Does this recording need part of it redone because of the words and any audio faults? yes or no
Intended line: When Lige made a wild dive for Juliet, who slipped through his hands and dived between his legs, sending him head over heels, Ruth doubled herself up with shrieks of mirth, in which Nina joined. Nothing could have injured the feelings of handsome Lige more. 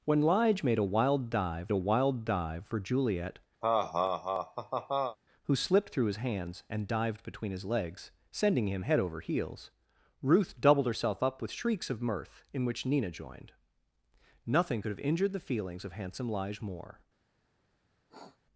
yes